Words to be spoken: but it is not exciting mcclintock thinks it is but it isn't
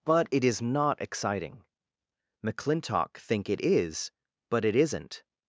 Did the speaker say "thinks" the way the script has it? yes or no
no